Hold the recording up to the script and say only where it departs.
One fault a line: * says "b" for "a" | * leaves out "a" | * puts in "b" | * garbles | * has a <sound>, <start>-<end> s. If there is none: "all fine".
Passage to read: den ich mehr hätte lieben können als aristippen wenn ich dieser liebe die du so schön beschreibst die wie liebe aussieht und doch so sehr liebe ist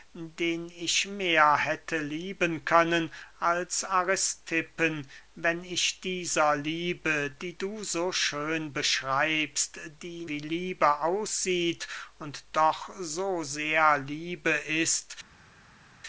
all fine